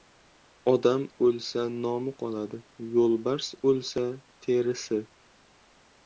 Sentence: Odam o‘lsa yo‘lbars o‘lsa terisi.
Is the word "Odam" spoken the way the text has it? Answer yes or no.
yes